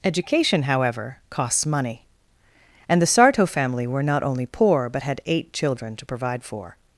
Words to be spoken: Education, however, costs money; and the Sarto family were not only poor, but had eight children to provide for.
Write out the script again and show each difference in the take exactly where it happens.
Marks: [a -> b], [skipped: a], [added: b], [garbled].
Education, however, costs money; and the Sarto family were not only poor, but had eight children to provide for.